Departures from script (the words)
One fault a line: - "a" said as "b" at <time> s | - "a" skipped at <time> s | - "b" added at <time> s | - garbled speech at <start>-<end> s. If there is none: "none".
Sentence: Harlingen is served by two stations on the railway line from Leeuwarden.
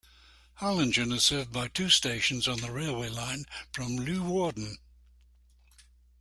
none